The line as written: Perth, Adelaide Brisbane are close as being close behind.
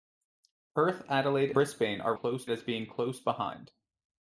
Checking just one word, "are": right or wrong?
right